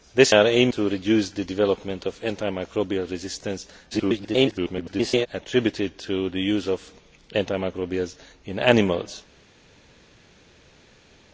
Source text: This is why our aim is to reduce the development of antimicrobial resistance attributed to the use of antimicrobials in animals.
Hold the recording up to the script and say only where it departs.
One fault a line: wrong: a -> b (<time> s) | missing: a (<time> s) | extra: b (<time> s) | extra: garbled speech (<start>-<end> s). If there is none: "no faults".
missing: is why (0.3 s)
missing: is (0.7 s)
extra: garbled speech (3.9-5.3 s)